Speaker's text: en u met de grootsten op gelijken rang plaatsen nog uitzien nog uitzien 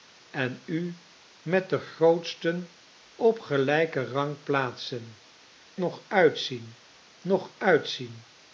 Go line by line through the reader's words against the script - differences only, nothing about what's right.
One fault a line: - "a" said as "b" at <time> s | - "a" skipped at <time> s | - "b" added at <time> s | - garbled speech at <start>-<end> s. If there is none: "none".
none